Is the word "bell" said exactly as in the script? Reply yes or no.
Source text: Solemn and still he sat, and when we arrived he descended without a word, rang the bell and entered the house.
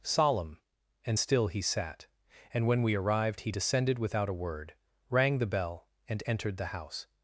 yes